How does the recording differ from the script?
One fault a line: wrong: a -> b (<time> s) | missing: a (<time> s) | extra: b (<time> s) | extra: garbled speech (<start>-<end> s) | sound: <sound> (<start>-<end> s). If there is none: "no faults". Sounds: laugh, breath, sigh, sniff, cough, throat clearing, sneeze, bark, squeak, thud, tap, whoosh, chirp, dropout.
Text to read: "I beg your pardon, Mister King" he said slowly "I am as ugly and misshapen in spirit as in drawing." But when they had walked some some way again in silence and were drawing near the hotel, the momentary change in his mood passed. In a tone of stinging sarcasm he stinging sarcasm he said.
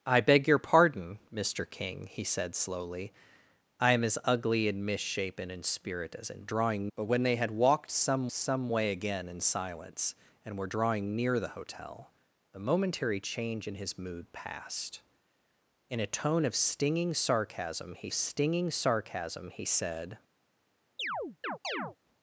sound: chirp (21.0-22.0 s)